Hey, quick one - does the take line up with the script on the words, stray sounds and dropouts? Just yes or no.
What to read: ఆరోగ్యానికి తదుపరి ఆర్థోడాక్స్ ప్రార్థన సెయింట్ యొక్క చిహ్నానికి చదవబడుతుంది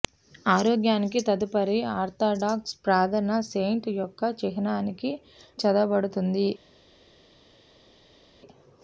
yes